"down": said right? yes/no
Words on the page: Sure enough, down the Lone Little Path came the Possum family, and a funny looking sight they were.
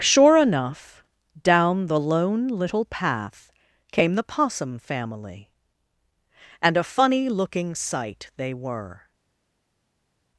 yes